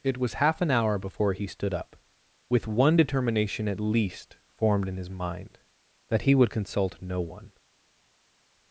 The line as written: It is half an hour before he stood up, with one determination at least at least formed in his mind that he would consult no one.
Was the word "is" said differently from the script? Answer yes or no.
yes